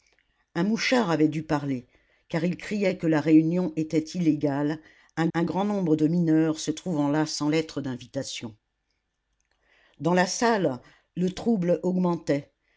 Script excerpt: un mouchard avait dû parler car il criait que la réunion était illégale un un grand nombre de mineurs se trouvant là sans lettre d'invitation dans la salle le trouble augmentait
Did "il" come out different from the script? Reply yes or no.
no